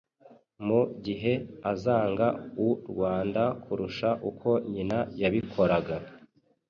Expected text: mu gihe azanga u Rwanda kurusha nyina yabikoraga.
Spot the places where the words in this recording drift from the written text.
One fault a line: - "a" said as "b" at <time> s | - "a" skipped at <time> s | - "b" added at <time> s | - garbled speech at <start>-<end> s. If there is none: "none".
- "uko" added at 4.3 s